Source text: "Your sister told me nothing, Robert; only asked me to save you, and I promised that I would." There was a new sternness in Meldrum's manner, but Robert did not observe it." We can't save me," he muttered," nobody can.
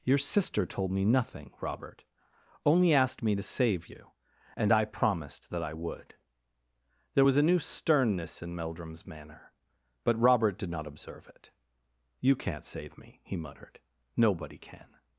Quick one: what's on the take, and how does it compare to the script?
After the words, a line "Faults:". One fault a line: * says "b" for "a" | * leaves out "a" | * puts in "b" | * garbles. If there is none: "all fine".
"Your sister told me nothing, Robert; only asked me to save you, and I promised that I would." There was a new sternness in Meldrum's manner, but Robert did not observe it." You can't save me," he muttered," nobody can.
Faults:
* says "You" for "We"